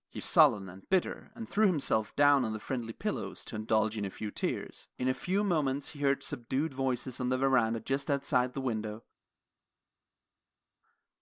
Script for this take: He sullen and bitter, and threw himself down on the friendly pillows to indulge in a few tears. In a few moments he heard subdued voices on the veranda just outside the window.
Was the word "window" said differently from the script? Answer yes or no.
no